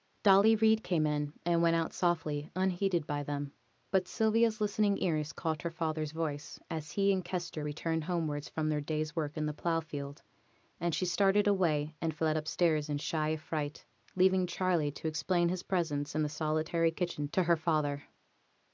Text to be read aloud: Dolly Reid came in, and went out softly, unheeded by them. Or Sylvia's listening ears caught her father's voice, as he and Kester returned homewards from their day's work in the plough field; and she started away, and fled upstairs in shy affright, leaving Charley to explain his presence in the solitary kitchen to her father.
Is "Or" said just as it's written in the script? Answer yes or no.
no